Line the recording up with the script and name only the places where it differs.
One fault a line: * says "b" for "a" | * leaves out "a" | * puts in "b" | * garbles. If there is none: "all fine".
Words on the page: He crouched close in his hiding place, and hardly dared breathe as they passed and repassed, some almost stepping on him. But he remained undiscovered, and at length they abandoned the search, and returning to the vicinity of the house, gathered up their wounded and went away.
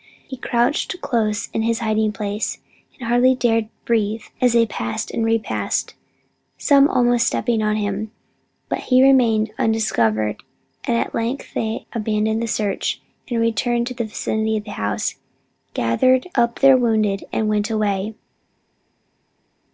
all fine